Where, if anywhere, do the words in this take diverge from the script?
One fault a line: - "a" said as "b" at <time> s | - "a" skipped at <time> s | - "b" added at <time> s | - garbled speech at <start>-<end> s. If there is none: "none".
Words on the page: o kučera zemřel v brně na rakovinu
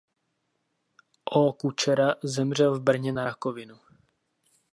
none